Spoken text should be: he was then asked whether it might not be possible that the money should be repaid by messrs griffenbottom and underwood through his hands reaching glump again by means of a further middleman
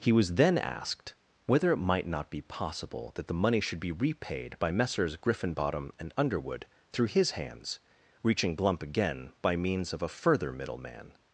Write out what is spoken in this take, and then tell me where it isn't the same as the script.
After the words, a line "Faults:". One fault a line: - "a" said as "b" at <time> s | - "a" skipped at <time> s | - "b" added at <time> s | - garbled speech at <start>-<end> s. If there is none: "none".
he was then asked whether it might not be possible that the money should be repaid by messrs griffenbottom and underwood through his hands reaching glump again by means of a further middleman
Faults:
none